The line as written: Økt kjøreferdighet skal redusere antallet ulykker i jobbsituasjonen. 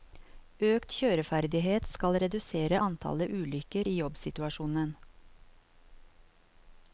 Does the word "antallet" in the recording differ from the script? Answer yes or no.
no